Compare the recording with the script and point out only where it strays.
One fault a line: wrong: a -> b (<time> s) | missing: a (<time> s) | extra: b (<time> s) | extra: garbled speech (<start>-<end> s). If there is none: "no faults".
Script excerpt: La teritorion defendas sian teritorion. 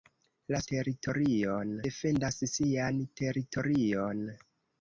no faults